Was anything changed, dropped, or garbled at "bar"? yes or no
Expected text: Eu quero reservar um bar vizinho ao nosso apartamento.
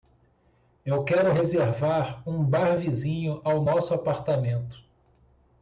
no